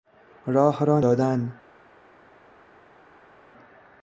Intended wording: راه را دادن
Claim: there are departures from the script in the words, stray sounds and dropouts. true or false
false